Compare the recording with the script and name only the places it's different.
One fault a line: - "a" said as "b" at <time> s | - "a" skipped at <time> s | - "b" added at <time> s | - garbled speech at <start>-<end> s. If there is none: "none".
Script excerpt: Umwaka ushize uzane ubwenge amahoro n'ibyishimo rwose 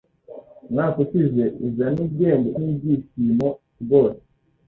- "amahoro" skipped at 2.5 s